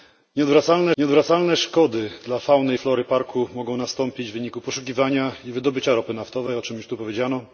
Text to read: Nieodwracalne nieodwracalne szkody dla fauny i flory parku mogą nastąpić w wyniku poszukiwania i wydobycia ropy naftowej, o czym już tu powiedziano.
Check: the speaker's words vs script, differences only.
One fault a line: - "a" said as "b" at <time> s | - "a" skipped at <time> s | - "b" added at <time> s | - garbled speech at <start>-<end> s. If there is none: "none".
none